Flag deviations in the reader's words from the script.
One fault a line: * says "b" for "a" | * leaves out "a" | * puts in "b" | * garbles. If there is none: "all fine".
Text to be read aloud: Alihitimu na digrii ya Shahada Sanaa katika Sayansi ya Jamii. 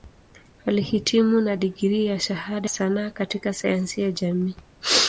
all fine